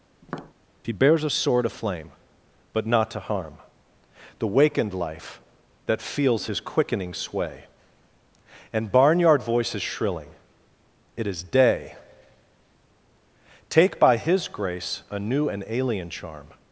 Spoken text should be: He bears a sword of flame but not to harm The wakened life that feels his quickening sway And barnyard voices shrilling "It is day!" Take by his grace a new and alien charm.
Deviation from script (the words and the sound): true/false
true